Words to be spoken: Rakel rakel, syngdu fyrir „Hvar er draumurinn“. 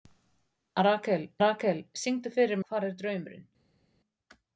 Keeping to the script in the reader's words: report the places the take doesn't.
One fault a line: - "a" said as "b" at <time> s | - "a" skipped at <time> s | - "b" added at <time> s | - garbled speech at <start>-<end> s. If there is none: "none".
none